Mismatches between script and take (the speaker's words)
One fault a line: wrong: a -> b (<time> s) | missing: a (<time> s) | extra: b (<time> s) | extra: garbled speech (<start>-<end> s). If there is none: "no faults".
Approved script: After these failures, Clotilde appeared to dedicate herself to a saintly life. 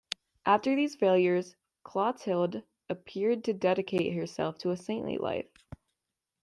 no faults